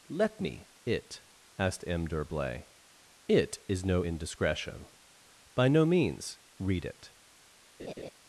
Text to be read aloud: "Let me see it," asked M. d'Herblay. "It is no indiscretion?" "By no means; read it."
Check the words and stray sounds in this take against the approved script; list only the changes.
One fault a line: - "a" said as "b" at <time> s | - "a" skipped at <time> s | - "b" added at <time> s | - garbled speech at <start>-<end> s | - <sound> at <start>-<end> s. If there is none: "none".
- "see" skipped at 0.7 s
- laugh at 7.8-8.1 s